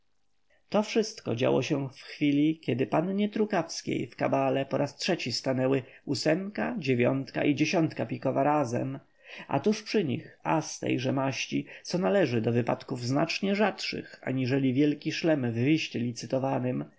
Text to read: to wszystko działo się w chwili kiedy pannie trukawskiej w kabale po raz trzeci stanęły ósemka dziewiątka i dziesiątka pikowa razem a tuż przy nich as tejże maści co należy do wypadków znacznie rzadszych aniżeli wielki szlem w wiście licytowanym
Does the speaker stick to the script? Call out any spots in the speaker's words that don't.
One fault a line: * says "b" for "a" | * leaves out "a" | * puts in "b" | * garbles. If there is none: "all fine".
all fine